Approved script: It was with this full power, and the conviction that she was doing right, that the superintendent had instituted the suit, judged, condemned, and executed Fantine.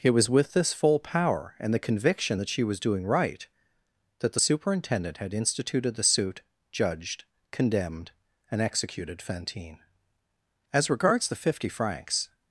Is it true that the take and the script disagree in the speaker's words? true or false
true